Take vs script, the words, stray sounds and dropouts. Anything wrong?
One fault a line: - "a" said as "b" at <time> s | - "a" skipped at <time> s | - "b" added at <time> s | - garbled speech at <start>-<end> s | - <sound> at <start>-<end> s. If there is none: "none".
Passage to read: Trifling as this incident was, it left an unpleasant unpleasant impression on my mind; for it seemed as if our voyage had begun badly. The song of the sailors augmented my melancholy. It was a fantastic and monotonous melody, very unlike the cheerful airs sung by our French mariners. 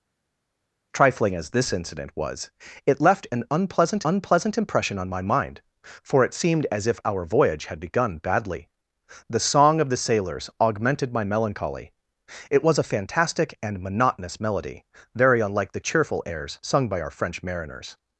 none